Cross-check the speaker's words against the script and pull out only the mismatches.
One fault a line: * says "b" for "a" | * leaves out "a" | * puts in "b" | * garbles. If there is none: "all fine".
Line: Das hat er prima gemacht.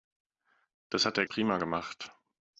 all fine